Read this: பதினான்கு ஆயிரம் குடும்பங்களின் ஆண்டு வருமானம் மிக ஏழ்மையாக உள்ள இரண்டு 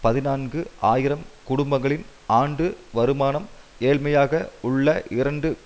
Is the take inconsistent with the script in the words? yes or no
yes